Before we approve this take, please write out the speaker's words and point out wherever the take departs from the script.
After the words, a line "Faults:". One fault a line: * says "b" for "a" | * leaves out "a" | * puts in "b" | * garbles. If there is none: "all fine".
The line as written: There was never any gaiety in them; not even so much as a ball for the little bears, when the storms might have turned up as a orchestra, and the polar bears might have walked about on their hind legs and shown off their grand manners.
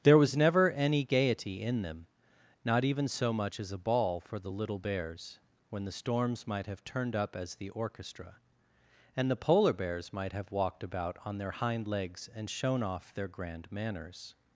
There was never any gaiety in them; not even so much as a ball for the little bears, when the storms might have turned up as the orchestra, and the polar bears might have walked about on their hind legs and shown off their grand manners.
Faults:
* says "the" for "a"